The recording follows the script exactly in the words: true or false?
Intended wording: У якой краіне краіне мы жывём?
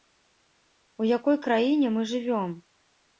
false